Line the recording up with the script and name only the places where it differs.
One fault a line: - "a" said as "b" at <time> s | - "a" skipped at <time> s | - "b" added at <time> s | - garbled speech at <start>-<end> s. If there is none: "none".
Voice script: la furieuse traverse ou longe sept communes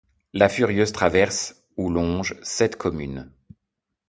none